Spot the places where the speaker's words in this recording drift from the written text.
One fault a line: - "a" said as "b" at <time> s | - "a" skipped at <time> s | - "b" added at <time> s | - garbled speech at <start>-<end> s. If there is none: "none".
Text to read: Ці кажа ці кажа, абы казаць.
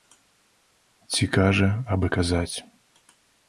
- "ці кажа" skipped at 1.7 s